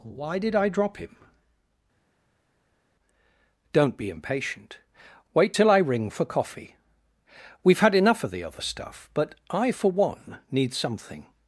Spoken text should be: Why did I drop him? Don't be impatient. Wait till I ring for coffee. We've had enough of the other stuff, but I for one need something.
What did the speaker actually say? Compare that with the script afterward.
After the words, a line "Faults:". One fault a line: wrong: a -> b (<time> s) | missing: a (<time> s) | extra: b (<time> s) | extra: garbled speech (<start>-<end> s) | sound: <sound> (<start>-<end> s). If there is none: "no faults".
Why did I drop him? Don't be impatient. Wait till I ring for coffee. We've had enough of the other stuff, but I for one need something.
Faults:
no faults